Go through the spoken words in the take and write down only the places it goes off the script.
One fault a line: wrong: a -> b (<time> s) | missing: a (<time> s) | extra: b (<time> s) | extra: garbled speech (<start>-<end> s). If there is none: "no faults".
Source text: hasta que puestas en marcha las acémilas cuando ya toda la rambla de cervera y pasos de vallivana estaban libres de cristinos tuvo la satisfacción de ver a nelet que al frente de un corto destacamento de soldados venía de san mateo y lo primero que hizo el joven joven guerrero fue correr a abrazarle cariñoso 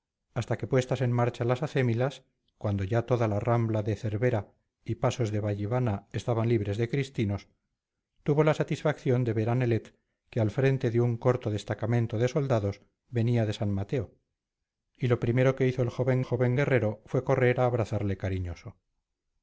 no faults